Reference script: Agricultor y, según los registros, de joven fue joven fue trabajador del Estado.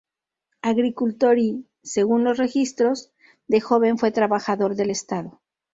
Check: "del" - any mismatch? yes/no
no